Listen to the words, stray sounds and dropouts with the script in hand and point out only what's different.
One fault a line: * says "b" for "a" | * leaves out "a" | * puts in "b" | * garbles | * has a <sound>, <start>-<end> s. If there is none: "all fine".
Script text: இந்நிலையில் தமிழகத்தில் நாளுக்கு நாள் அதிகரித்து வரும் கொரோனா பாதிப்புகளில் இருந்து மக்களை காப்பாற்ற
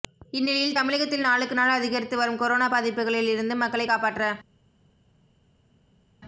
all fine